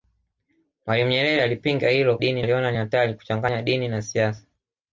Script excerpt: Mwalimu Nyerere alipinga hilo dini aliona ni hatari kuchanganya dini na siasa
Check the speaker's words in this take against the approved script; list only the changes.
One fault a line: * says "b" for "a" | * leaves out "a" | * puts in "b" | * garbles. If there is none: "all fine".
all fine